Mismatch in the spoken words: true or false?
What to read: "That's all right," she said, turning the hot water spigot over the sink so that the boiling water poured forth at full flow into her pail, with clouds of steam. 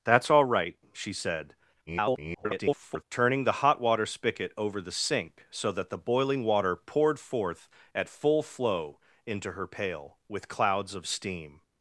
true